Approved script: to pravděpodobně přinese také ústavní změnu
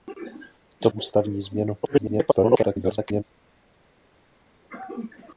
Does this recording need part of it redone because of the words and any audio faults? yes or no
yes